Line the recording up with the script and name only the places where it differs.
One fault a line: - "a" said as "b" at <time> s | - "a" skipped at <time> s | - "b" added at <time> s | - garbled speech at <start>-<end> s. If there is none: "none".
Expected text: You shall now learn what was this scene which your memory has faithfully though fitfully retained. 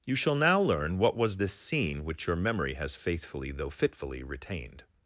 none